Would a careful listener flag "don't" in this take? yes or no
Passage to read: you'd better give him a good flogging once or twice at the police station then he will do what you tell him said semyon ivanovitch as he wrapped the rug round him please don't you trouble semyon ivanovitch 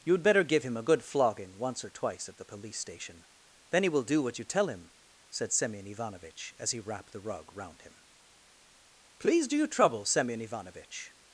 yes